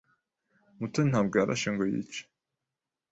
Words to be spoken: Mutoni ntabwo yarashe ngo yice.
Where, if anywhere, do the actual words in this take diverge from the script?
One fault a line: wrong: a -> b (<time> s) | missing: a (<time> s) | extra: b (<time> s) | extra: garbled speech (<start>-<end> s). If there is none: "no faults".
no faults